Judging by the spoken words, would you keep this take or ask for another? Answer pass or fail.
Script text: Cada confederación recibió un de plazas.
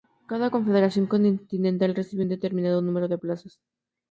fail